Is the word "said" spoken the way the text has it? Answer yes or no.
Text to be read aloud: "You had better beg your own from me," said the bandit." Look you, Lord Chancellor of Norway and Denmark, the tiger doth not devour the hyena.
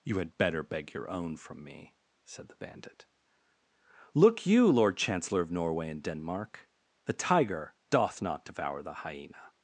yes